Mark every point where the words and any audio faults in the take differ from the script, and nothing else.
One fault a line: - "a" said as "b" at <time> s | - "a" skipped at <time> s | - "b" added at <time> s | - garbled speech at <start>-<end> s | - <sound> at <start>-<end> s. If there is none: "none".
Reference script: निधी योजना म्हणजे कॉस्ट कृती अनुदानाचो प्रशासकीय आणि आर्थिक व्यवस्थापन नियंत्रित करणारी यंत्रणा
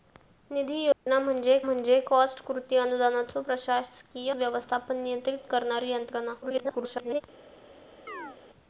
- dropout at 0.9-1.1 s
- "म्हणजे" added at 1.6 s
- "आणि आर्थिक" skipped at 4.3 s
- garbled speech at 6.4-7.2 s
- chirp at 8.1-8.4 s